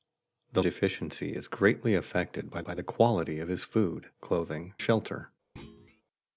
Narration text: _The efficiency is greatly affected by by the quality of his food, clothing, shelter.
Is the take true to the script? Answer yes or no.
yes